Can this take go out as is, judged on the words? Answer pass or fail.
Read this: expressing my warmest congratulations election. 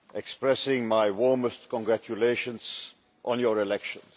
fail